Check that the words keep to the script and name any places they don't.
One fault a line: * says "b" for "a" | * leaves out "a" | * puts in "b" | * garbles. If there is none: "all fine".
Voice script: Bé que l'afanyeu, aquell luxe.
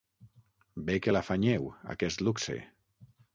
* says "aquest" for "aquell"